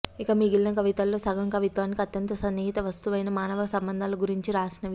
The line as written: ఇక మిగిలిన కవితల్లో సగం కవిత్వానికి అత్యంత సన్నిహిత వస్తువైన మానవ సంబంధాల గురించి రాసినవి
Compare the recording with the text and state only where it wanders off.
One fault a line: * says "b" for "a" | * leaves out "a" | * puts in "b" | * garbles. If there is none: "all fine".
all fine